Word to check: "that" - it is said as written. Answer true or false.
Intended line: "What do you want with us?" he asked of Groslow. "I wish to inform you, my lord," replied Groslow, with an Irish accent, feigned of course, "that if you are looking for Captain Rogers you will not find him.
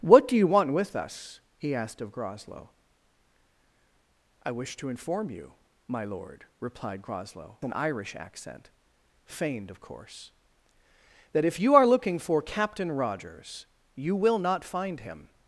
true